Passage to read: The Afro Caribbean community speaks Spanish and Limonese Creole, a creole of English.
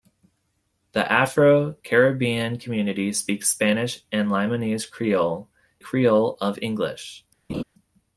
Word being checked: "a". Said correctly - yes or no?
no